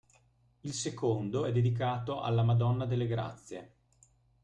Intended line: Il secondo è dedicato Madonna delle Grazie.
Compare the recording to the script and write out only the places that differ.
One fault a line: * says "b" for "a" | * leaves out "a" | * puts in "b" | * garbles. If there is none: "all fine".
* puts in "alla"